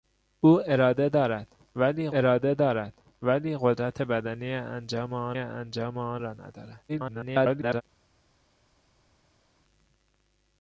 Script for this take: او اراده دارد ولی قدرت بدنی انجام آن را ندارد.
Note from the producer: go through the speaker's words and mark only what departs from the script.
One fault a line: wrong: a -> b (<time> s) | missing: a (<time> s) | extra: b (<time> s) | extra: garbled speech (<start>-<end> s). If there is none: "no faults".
extra: اراده دارد ولی (2.2 s)
extra: انجام آن (5.4 s)
extra: garbled speech (6.9-7.8 s)